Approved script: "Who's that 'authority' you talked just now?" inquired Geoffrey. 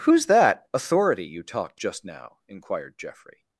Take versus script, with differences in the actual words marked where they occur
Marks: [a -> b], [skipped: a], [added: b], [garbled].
"Who's that 'authority' you talked just now?" inquired Geoffrey.